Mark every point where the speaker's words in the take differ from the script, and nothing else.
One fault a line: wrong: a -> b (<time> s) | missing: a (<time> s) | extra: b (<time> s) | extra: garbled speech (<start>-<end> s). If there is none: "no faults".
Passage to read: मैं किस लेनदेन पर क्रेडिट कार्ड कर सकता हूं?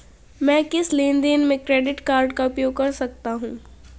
wrong: पर -> में (1.4 s)
extra: का उपयोग (2.3 s)